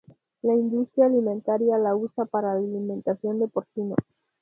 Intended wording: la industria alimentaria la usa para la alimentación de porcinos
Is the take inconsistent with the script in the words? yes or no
no